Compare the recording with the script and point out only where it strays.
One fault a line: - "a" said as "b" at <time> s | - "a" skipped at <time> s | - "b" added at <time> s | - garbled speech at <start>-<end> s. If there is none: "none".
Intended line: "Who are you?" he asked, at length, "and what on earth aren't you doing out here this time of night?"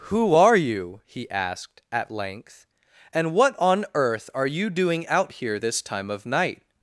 - "aren't" said as "are" at 4.3 s